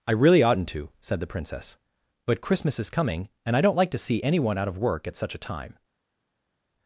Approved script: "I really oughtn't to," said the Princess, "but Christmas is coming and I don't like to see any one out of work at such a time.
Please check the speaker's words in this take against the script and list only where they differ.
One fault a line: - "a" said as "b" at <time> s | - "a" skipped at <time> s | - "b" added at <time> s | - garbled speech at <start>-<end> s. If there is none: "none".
none